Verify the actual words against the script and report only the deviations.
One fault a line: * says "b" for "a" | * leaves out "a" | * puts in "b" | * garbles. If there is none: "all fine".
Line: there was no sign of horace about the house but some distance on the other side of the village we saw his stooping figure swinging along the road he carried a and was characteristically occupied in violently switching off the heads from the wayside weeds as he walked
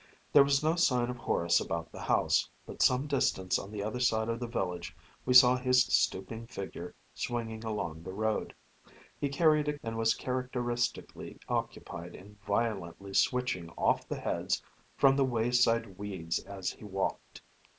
all fine